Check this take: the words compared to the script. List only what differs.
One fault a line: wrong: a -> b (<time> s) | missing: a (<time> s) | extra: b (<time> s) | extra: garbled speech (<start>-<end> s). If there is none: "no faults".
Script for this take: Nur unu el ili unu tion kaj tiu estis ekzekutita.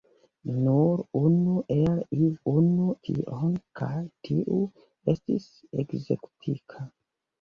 no faults